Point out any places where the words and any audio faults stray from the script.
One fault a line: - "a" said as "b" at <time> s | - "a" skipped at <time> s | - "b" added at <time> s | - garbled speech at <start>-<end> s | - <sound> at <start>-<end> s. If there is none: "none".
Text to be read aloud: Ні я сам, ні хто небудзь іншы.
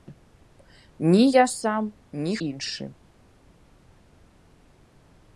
- "хто небудзь" skipped at 2.4 s